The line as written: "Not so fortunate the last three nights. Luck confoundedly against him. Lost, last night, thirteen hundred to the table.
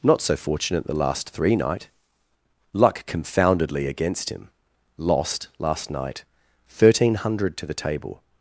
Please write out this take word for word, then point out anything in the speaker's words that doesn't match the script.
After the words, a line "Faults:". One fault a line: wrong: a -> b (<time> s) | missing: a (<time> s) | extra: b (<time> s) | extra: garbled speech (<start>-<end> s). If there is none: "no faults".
"Not so fortunate the last three night. Luck confoundedly against him. Lost, last night, thirteen hundred to the table.
Faults:
wrong: nights -> night (1.6 s)